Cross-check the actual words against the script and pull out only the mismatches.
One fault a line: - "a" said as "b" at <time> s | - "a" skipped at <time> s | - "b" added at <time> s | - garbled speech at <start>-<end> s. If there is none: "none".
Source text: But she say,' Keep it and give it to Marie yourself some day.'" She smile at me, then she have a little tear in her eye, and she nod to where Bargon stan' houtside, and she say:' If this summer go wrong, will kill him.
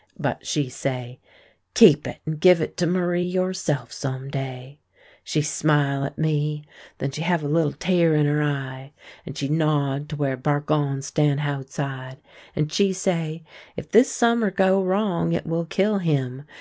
- "it" added at 15.3 s